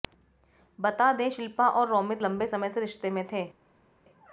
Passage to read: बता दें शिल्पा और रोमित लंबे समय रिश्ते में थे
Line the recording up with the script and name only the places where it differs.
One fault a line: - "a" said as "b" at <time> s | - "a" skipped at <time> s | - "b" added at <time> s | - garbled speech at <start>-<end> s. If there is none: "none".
- "से" added at 2.7 s